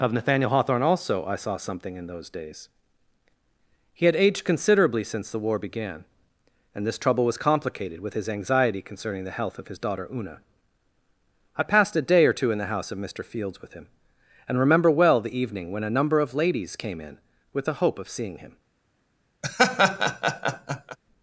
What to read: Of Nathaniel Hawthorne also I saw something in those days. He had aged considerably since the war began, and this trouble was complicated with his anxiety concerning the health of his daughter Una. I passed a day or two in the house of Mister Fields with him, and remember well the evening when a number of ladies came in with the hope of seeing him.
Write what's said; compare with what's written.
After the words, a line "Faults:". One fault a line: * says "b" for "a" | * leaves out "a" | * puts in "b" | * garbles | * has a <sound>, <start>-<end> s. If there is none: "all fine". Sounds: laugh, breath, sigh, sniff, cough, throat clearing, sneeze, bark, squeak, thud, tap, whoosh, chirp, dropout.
Of Nathaniel Hawthorne also I saw something in those days. He had aged considerably since the war began, and this trouble was complicated with his anxiety concerning the health of his daughter Una. I passed a day or two in the house of Mister Fields with him, and remember well the evening when a number of ladies came in with the hope of seeing him.
Faults:
* has a laugh, 19.4-21.0 s